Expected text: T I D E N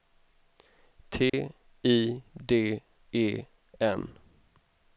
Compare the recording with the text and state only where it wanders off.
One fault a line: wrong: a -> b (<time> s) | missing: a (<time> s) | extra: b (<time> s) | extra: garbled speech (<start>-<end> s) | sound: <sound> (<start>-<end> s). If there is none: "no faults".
sound: dropout (1.3-1.3 s)